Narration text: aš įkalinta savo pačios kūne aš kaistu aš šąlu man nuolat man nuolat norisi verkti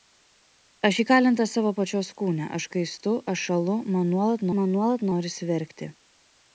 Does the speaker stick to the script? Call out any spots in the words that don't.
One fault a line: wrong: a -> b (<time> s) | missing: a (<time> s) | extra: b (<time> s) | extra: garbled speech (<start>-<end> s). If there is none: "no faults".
no faults